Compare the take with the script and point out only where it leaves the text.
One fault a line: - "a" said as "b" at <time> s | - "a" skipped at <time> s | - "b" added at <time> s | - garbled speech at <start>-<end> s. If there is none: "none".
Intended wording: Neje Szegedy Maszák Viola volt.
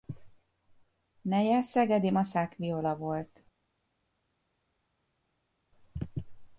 none